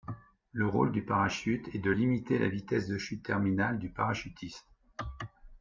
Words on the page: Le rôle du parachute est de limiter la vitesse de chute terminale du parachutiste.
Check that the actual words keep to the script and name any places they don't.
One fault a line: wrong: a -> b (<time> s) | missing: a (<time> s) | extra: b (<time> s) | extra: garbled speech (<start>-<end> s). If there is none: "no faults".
no faults